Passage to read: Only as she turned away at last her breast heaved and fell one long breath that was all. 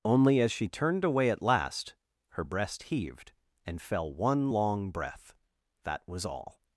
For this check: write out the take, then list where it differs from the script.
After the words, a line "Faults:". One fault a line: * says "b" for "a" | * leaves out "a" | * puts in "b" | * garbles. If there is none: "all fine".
Only as she turned away at last her breast heaved and fell one long breath that was all.
Faults:
all fine